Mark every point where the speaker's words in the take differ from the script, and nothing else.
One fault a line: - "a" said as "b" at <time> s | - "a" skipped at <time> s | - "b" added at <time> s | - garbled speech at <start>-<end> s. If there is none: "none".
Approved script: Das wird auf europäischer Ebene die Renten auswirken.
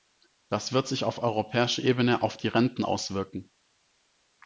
- "sich" added at 0.9 s
- "auf" added at 2.2 s